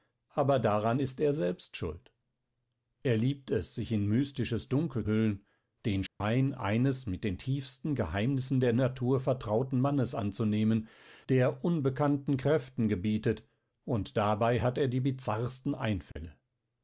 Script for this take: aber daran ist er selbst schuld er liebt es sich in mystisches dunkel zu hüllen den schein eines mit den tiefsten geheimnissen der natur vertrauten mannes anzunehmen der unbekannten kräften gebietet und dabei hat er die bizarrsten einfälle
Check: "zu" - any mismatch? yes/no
yes